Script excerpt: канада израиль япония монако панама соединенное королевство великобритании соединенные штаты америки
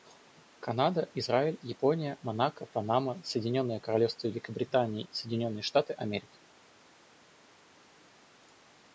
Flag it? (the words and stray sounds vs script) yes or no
no